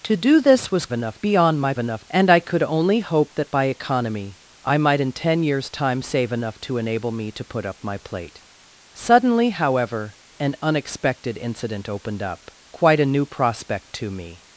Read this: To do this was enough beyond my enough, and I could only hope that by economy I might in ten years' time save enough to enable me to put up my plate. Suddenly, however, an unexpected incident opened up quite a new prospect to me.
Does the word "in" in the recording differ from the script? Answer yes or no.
no